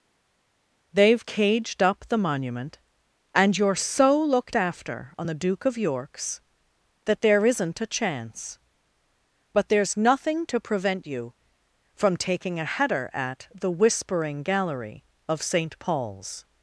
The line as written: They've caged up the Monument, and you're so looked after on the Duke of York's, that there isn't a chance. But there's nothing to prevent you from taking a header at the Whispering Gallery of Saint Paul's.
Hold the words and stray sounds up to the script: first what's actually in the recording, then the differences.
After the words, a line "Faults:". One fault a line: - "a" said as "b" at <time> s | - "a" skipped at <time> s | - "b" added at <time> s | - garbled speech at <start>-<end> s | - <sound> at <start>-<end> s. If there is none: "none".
They've caged up the Monument, and you're so looked after on the Duke of York's, that there isn't a chance. But there's nothing to prevent you from taking a header at the Whispering Gallery of Saint Paul's.
Faults:
none